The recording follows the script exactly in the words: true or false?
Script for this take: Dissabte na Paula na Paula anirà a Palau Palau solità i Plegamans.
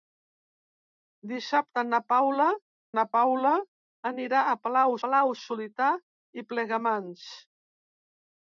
true